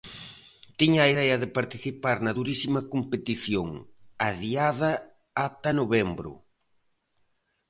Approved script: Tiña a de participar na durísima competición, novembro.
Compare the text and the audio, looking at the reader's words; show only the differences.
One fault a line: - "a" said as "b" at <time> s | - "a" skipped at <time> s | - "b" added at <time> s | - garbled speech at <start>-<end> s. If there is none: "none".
- "idea" added at 1.1 s
- "adiada ata" added at 4.3 s